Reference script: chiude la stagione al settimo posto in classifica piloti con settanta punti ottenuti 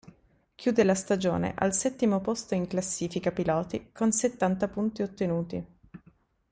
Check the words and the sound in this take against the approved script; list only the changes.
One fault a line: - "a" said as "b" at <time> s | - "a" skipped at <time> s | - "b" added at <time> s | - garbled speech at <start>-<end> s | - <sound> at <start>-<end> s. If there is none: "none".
none